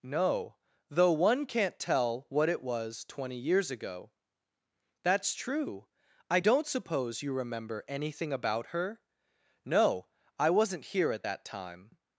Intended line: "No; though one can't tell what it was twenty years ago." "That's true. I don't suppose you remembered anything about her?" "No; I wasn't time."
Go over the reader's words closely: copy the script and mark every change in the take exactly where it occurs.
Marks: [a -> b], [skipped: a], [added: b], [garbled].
"No; though one can't tell what it was twenty years ago." "That's true. I don't suppose you [remembered -> remember] anything about her?" "No; I wasn't [added: here at that] time."